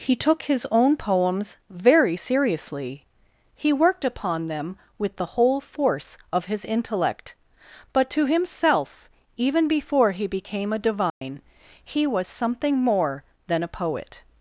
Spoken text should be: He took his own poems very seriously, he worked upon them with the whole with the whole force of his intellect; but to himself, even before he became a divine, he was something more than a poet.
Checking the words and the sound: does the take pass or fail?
fail